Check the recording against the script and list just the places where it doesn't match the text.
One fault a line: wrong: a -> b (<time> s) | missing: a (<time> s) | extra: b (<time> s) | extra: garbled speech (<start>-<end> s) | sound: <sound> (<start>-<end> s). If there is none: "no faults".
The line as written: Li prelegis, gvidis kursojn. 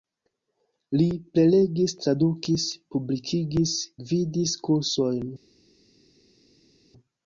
extra: tradukis publikigis (2.0 s)